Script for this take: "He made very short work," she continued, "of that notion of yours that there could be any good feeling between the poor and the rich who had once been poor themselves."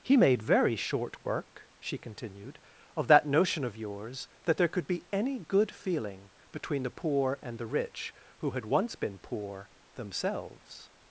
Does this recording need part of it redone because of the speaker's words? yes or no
no